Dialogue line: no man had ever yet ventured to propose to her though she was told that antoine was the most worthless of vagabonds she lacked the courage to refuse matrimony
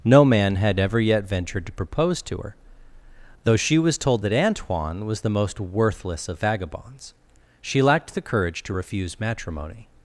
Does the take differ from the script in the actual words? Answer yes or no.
no